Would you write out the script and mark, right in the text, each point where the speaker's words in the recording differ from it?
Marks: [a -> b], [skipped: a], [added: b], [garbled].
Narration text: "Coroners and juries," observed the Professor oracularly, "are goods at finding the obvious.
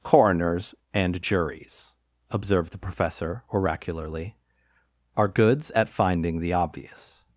"Coroners and juries," observed the Professor oracularly, "are goods at finding the obvious.